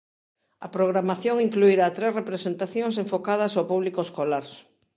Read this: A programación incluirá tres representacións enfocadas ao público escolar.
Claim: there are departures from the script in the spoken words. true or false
false